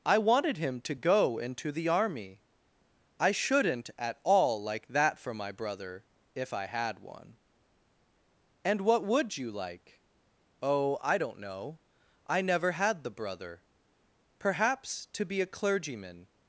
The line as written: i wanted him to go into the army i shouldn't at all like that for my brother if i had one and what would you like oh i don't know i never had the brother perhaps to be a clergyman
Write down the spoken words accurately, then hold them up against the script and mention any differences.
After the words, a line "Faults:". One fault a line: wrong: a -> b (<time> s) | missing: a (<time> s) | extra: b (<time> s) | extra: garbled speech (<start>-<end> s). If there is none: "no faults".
i wanted him to go into the army i shouldn't at all like that for my brother if i had one and what would you like oh i don't know i never had the brother perhaps to be a clergyman
Faults:
no faults